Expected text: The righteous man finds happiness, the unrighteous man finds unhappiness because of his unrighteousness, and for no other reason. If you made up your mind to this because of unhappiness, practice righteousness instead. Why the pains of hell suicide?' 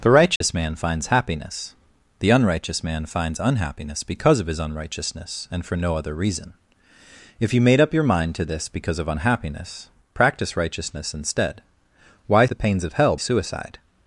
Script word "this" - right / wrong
right